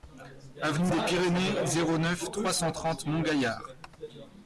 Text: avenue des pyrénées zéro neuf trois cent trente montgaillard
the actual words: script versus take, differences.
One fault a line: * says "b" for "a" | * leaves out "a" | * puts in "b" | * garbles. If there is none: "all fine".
all fine